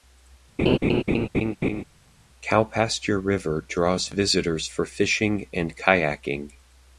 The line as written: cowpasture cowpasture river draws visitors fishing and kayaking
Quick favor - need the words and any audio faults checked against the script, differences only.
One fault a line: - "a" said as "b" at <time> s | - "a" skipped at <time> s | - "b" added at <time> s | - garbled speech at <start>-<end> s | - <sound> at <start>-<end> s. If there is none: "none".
- laugh at 0.6-1.8 s
- "cowpasture" skipped at 3.2 s
- "for" added at 4.7 s